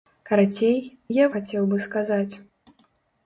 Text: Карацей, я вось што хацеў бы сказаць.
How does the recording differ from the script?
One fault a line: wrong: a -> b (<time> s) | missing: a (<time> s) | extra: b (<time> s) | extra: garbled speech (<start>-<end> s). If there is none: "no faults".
missing: вось што (1.3 s)